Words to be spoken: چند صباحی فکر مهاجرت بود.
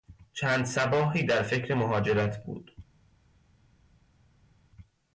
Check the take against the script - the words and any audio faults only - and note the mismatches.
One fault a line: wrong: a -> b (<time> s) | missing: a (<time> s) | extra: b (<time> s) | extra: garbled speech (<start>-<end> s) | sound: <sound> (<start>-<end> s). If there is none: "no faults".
extra: در (1.2 s)